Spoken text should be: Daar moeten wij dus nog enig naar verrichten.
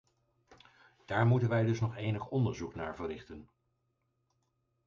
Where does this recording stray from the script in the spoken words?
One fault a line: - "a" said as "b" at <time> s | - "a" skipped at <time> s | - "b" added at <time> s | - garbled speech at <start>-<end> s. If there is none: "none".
- "onderzoek" added at 2.3 s